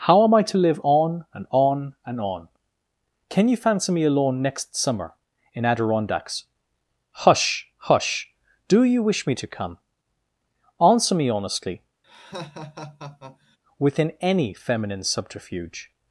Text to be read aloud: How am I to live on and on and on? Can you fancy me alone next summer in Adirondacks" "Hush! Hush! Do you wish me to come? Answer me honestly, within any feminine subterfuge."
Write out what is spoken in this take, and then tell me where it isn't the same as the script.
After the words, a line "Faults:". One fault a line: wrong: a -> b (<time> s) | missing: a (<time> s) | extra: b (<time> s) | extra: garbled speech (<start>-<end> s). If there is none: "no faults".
How am I to live on and on and on? Can you fancy me alone next summer in Adirondacks" "Hush! Hush! Do you wish me to come? Answer me honestly, within any feminine subterfuge."
Faults:
no faults